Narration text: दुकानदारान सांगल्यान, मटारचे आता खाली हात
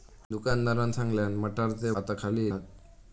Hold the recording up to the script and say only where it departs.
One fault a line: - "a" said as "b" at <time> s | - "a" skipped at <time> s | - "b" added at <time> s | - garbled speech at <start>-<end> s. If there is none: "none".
none